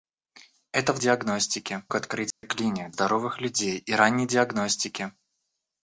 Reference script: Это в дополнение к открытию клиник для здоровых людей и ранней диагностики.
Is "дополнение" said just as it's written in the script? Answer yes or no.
no